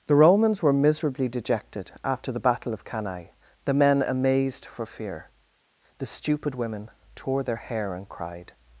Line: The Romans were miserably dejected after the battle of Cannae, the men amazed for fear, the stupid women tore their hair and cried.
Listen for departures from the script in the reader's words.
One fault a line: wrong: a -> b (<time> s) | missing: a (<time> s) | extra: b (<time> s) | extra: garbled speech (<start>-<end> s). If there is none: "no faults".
no faults